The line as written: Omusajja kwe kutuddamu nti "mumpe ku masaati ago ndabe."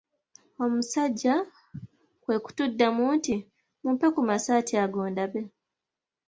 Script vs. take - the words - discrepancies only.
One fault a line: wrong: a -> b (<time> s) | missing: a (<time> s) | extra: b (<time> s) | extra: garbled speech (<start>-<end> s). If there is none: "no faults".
no faults